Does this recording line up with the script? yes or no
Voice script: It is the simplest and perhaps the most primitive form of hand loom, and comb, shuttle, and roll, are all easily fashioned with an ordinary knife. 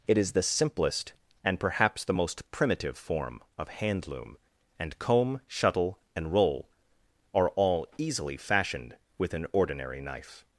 yes